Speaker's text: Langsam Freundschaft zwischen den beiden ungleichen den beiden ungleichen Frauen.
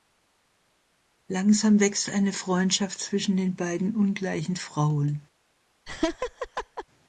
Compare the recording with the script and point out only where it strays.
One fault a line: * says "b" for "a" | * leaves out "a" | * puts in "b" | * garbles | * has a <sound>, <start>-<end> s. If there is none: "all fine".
* puts in "wächst eine"
* leaves out "den beiden ungleichen"
* has a laugh, 5.9-6.8 s